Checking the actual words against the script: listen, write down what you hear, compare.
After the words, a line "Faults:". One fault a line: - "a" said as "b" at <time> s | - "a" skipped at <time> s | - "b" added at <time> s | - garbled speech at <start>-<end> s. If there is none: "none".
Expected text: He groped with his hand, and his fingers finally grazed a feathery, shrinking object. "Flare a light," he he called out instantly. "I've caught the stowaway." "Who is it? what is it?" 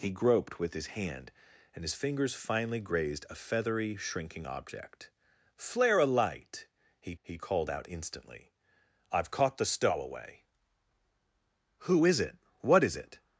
He groped with his hand, and his fingers finally grazed a feathery, shrinking object. "Flare a light," he he called out instantly. "I've caught the stowaway." "Who is it? what is it?"
Faults:
none